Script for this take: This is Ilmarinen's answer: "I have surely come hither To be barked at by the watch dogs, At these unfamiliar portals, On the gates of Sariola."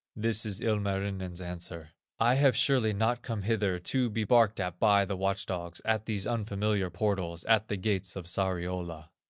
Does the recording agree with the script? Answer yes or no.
no